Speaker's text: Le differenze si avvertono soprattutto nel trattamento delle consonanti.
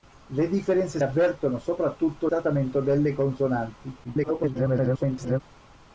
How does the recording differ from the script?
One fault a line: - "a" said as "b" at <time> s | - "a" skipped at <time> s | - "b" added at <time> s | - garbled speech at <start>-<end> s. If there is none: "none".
- "si" skipped at 1.0 s
- "nel" skipped at 2.3 s
- garbled speech at 4.0-5.4 s